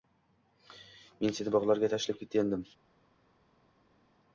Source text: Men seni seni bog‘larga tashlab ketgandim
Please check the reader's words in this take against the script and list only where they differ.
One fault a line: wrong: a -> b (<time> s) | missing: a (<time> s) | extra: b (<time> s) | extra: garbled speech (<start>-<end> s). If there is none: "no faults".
missing: seni (1.6 s)